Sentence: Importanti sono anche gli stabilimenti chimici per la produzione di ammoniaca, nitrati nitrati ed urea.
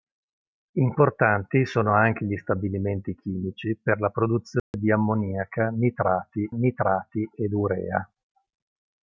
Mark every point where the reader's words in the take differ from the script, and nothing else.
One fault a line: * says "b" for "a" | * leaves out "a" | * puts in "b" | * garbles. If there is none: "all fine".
all fine